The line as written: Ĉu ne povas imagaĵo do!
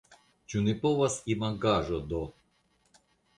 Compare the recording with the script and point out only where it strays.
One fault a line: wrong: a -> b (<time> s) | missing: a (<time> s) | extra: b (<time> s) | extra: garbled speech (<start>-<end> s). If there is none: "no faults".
no faults